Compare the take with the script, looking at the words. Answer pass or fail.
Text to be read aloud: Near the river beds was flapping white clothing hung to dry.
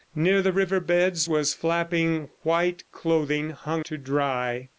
pass